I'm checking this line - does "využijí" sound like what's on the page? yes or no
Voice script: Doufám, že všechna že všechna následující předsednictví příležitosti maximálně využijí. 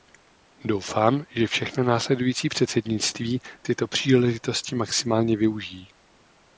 yes